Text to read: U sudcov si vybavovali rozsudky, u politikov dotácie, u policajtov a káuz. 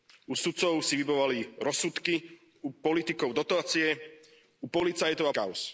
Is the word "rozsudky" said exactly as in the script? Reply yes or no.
yes